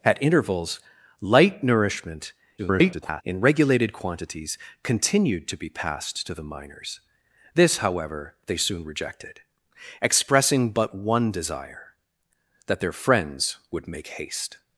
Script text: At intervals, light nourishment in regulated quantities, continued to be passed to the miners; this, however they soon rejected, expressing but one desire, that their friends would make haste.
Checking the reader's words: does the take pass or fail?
fail